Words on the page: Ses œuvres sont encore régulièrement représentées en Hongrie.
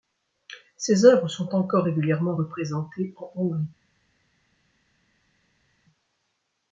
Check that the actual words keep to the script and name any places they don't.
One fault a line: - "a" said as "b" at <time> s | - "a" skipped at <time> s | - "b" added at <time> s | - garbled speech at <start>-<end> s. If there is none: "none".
none